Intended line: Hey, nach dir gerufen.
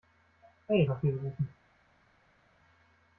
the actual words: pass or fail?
pass